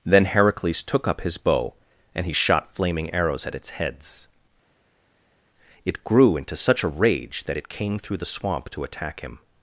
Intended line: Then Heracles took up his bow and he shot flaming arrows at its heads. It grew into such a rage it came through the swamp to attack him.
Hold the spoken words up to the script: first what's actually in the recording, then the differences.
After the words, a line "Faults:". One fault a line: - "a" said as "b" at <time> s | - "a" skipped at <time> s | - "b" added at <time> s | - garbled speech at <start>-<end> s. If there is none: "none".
Then Heracles took up his bow and he shot flaming arrows at its heads. It grew into such a rage that it came through the swamp to attack him.
Faults:
- "that" added at 7.4 s